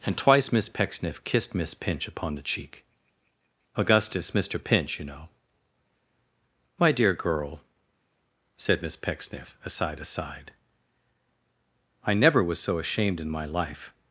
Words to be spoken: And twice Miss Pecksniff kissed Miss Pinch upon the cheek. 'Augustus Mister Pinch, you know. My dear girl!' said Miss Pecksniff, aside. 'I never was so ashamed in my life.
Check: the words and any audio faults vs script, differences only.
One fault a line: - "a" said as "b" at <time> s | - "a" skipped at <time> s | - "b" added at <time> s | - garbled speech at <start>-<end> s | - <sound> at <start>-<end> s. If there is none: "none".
- "aside" added at 10.0 s